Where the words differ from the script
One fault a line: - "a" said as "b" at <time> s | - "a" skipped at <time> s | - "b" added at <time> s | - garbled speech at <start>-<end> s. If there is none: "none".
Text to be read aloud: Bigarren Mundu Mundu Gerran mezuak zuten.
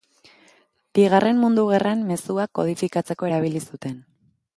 - "Mundu" skipped at 1.6 s
- "kodifikatzeko erabili" added at 2.6 s